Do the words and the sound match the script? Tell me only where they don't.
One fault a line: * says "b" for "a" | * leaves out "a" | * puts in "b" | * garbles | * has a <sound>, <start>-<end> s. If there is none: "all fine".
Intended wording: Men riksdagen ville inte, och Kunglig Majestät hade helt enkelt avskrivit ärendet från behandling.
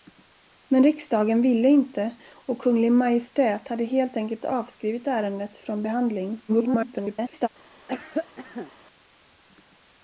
* garbles
* has a cough, 7.9-8.7 s